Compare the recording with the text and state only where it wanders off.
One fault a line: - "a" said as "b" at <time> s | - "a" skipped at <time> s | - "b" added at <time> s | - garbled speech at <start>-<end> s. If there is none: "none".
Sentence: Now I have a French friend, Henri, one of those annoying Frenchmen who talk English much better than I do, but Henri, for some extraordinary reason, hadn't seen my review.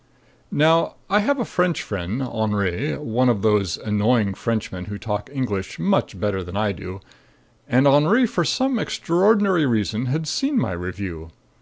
- "but" said as "and" at 7.7 s
- "hadn't" said as "had" at 10.1 s